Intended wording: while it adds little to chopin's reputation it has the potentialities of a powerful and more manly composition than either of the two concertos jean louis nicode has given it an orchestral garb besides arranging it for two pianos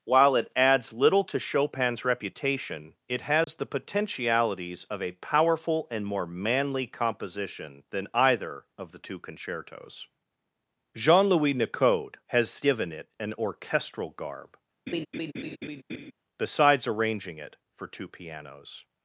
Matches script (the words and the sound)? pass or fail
fail